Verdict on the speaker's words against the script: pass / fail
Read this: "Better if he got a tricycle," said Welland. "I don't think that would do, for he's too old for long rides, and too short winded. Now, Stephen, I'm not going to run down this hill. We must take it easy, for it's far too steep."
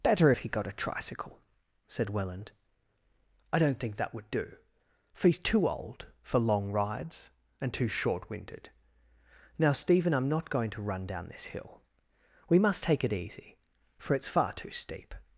pass